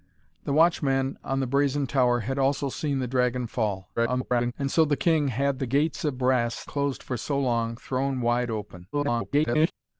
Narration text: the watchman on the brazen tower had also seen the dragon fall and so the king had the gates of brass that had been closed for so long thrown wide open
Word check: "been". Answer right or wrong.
wrong